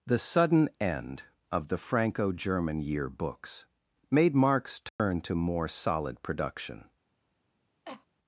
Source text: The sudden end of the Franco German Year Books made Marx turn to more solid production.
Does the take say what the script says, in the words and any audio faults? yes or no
no